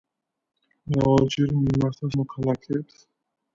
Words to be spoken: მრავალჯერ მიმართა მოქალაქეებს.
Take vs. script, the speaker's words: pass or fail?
pass